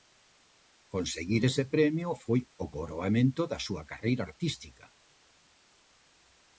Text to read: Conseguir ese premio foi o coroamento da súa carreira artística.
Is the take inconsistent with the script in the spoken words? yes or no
no